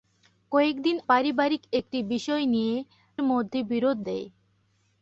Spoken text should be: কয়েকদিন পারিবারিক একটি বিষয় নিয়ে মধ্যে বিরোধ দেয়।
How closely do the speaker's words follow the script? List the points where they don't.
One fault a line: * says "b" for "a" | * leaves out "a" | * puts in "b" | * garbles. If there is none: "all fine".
all fine